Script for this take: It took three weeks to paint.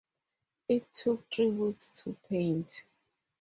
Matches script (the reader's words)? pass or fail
pass